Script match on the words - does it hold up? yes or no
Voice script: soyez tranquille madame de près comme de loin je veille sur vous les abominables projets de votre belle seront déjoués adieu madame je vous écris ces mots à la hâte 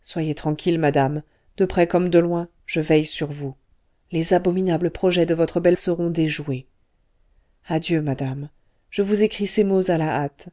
yes